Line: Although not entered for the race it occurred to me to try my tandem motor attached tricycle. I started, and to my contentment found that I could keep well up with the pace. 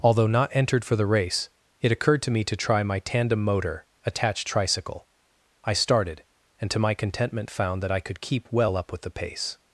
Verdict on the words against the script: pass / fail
pass